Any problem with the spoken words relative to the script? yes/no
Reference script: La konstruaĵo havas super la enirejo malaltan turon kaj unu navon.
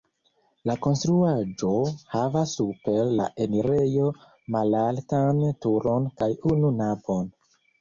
no